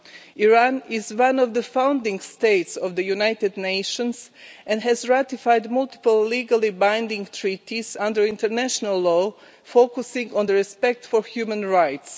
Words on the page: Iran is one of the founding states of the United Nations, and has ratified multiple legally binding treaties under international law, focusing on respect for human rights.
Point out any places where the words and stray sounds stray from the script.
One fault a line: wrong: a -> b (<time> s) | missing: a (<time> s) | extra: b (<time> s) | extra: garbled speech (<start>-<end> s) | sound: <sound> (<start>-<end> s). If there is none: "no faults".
no faults